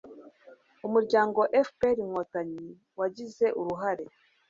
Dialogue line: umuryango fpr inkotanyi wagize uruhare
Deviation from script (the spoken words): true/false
false